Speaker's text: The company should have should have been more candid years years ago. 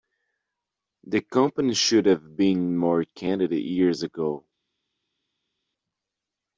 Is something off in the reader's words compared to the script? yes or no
yes